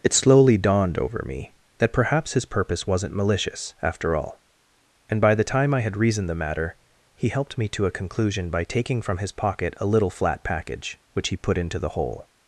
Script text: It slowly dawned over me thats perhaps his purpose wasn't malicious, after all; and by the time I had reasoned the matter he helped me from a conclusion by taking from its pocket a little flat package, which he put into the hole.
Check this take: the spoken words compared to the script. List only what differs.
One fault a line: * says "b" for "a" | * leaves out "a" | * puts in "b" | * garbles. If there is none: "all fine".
* says "that" for "thats"
* says "to" for "from"
* says "his" for "its"